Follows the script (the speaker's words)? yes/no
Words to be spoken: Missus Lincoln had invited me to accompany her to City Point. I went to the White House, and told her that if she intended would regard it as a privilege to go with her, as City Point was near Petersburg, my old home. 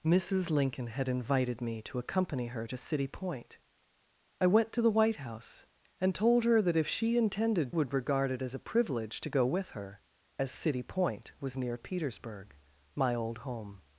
yes